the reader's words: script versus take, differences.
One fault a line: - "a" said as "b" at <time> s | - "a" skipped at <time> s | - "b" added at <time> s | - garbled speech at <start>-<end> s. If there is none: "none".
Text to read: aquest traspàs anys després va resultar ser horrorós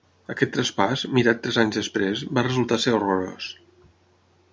- "mirat tres" added at 1.2 s